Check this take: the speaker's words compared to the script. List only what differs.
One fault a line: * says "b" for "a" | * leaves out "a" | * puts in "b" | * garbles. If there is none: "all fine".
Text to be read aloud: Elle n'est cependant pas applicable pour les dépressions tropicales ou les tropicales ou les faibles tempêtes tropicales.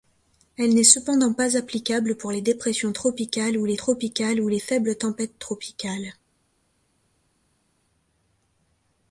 all fine